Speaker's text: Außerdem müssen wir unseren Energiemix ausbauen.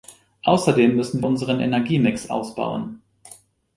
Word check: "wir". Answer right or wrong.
wrong